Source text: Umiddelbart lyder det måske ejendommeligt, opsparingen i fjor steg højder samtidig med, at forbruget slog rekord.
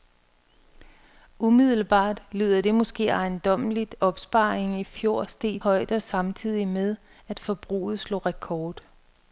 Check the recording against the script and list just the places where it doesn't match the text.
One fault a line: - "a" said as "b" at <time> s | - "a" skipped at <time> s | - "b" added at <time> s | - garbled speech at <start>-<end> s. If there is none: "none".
none